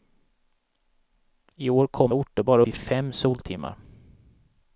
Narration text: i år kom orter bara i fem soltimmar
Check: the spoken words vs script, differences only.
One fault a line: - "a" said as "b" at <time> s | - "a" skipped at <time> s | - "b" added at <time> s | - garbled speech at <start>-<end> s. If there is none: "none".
none